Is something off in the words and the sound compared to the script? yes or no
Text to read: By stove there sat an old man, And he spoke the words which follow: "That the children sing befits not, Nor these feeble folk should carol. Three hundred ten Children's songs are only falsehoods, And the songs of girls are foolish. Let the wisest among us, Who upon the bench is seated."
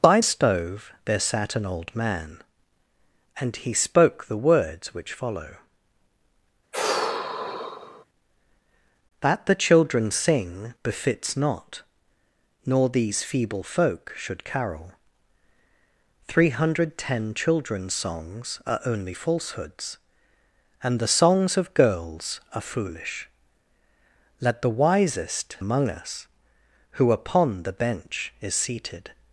yes